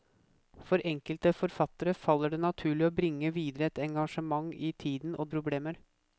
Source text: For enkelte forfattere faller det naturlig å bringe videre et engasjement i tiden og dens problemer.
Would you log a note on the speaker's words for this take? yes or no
yes